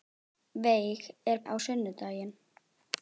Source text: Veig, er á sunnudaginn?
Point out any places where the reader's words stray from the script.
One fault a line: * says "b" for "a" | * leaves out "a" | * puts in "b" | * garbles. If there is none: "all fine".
all fine